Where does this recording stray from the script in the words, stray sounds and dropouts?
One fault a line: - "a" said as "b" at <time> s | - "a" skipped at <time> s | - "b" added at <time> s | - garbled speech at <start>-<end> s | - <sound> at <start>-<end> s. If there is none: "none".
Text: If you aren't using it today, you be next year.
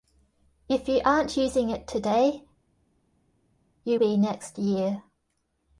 none